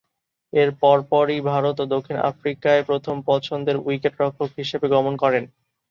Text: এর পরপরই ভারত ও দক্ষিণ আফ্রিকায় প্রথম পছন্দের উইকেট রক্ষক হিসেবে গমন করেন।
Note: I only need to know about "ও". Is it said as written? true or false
true